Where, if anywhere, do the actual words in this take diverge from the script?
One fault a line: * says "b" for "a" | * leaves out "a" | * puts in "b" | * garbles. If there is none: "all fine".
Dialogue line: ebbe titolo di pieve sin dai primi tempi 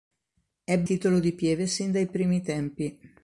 all fine